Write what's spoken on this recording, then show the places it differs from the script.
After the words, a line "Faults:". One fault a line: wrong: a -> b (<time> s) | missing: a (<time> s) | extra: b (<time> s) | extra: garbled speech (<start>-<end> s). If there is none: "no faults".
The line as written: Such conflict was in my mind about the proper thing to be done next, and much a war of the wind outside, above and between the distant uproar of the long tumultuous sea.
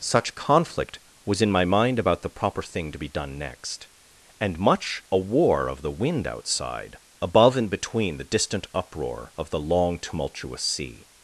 Such conflict was in my mind about the proper thing to be done next, and much a war of the wind outside, above and between the distant uproar of the long tumultuous sea.
Faults:
no faults